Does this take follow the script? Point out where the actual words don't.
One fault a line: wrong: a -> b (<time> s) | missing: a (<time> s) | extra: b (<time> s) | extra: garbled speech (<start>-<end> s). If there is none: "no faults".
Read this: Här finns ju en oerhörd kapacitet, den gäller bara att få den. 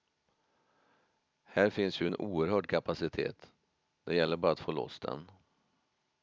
wrong: den -> det (4.0 s)
extra: loss (4.7 s)